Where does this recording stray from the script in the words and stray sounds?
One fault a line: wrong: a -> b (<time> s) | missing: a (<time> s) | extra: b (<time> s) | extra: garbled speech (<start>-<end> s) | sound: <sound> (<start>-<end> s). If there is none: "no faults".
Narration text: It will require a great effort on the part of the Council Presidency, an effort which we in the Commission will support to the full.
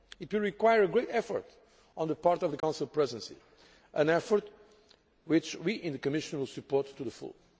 sound: dropout (2.6-2.6 s)